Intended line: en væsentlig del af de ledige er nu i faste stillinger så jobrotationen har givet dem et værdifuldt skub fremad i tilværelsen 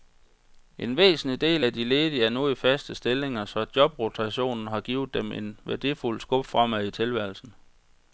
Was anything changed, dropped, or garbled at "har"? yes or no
no